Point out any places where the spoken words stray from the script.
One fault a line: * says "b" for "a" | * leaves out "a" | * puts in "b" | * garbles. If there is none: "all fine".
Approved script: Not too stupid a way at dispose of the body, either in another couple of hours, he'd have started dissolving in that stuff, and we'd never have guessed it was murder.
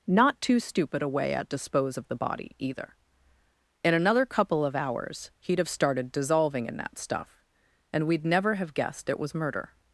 all fine